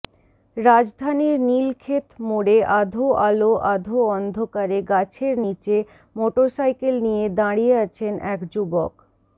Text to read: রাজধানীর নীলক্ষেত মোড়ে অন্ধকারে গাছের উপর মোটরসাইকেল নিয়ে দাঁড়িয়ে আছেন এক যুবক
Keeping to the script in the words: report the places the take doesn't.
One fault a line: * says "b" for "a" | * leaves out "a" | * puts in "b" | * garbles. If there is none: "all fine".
* puts in "আধো আলো আধো"
* says "নিচে" for "উপর"